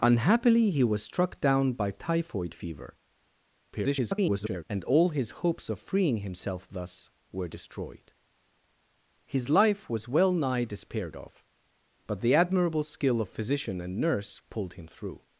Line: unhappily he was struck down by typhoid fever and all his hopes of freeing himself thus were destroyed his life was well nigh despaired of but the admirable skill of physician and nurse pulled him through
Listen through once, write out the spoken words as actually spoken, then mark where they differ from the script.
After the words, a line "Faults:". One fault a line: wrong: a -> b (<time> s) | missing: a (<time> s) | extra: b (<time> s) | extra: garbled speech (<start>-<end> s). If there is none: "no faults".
unhappily he was struck down by typhoid fever [garbled] and all his hopes of freeing himself thus were destroyed his life was well nigh despaired of but the admirable skill of physician and nurse pulled him through
Faults:
extra: garbled speech (3.7-4.6 s)